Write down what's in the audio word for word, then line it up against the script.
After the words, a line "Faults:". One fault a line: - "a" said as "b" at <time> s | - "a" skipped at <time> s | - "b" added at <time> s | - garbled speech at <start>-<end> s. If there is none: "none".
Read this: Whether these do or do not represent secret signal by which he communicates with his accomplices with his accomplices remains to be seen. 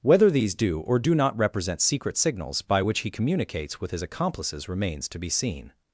Whether these do or do not represent secret signals by which he communicates with his accomplices remains to be seen.
Faults:
- "signal" said as "signals" at 2.2 s
- "with his accomplices" skipped at 4.7 s